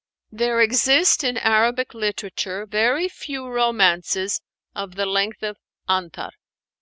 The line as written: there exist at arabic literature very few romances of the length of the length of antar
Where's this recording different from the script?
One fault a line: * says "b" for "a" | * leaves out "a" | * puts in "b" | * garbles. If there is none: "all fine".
* says "in" for "at"
* leaves out "the length of"